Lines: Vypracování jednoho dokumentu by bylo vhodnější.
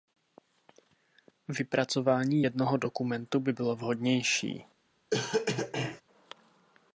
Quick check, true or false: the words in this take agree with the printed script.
true